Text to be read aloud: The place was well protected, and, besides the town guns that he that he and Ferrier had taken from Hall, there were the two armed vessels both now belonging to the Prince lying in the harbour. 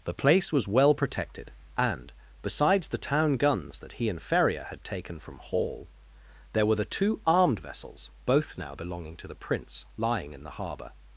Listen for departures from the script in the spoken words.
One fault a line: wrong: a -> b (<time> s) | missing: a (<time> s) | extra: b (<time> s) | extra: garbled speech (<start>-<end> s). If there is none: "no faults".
missing: that he (4.1 s)